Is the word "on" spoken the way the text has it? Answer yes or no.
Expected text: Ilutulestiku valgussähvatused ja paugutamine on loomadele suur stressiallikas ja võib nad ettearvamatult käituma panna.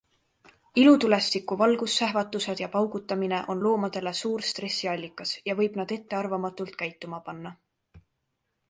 yes